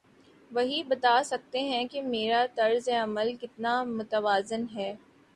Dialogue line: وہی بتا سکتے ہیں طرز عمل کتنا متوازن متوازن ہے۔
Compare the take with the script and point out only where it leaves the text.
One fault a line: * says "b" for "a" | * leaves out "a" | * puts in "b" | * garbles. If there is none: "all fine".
* puts in "کہ میرا"
* leaves out "متوازن"